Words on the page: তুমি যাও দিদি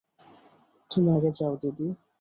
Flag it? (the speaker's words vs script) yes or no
yes